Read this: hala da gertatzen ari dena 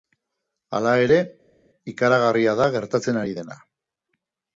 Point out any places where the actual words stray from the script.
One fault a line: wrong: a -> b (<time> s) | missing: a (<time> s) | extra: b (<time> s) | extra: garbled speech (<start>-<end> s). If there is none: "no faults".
extra: ere ikaragarria (1.0 s)